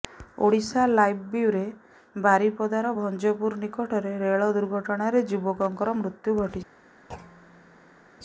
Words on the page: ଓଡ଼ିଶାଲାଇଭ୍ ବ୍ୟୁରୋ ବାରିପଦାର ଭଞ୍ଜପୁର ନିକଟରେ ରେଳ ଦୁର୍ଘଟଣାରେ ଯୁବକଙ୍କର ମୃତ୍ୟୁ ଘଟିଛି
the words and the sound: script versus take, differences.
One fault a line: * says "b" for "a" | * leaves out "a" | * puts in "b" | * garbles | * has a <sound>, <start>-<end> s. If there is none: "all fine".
* has a thud, 7.1-8.1 s